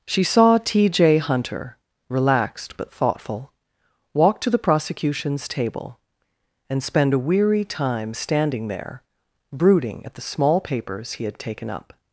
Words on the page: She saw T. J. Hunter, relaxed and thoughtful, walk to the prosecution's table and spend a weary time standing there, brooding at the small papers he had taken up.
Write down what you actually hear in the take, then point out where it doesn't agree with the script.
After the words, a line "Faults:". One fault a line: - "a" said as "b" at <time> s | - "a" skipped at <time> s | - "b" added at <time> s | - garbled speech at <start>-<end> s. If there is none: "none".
She saw T. J. Hunter, relaxed but thoughtful, walk to the prosecution's table and spend a weary time standing there, brooding at the small papers he had taken up.
Faults:
- "and" said as "but" at 2.8 s